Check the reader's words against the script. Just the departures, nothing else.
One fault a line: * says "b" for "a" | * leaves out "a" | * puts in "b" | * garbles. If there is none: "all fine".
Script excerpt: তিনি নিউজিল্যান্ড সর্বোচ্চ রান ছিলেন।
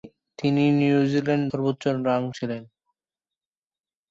all fine